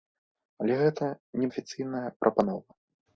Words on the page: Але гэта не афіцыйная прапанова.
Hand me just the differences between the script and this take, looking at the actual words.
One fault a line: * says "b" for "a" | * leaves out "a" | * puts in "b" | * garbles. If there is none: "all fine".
all fine